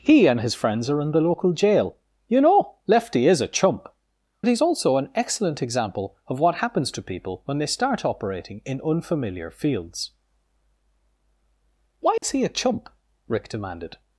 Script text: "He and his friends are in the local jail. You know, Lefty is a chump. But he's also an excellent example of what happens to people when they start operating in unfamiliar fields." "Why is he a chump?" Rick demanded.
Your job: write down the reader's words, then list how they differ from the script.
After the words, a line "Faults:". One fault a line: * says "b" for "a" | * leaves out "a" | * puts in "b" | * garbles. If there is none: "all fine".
"He and his friends are in the local jail. You know, Lefty is a chump. He's also an excellent example of what happens to people when they start operating in unfamiliar fields." "Why is he a chump?" Rick demanded.
Faults:
* leaves out "But"